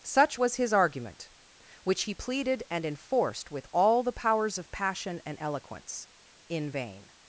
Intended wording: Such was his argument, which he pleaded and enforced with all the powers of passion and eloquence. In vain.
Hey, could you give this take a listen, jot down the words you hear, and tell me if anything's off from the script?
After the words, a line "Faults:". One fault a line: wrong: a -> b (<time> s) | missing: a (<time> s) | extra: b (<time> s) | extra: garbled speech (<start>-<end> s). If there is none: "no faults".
Such was his argument, which he pleaded and enforced with all the powers of passion and eloquence. In vain.
Faults:
no faults